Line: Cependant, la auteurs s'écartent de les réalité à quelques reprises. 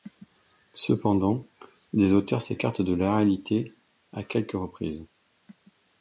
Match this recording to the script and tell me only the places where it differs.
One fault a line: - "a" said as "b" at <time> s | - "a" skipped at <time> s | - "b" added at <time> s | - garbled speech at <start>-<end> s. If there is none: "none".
- "la" said as "les" at 1.9 s
- "les" said as "la" at 3.0 s